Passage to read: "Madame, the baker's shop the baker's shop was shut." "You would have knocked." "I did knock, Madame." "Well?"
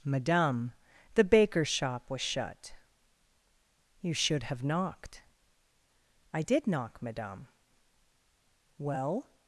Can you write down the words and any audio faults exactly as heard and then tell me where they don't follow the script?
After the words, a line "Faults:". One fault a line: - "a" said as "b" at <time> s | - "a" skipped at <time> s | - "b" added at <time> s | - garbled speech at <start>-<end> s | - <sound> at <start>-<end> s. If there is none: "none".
"Madame, the baker's shop was shut." "You should have knocked." "I did knock, Madame." "Well?"
Faults:
- "the baker's shop" skipped at 2.1 s
- "would" said as "should" at 4.2 s